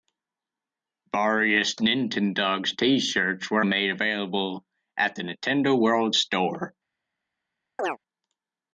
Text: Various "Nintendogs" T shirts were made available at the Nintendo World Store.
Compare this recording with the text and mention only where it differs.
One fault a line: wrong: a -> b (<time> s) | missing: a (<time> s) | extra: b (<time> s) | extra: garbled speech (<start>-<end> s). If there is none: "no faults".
no faults